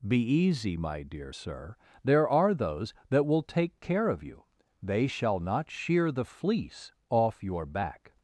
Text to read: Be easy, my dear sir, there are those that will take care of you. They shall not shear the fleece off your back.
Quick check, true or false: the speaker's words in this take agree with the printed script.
true